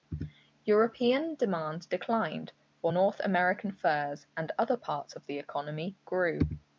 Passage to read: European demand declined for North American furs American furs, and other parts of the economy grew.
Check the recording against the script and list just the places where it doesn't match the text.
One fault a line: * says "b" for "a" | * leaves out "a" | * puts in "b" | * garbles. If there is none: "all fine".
* leaves out "American furs"